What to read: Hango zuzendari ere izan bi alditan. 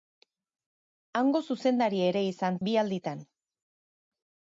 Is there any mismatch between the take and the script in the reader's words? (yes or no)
no